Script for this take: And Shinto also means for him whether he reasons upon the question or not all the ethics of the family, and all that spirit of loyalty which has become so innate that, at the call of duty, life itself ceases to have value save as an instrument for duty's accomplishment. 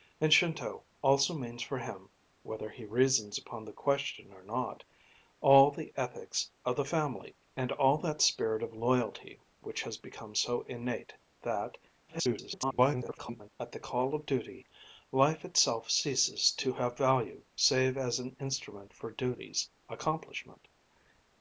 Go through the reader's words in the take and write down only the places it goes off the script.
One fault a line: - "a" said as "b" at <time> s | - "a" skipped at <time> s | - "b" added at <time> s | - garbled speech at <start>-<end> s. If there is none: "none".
- garbled speech at 12.1-13.5 s